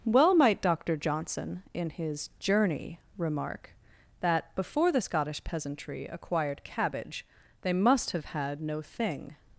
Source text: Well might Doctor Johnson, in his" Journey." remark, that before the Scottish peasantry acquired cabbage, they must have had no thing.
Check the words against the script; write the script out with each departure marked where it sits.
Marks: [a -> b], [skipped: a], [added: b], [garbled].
Well might Doctor Johnson, in his" Journey." remark, that before the Scottish peasantry acquired cabbage, they must have had no thing.